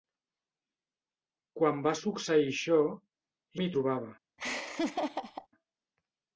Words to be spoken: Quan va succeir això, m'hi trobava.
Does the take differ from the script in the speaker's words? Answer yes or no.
no